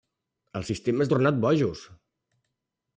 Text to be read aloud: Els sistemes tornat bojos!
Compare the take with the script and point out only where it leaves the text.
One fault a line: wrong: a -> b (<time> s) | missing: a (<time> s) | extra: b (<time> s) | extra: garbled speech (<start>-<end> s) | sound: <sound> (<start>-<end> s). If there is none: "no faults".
no faults